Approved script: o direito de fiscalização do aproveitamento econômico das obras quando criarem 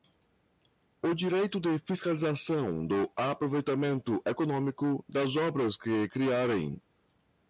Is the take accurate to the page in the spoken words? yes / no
no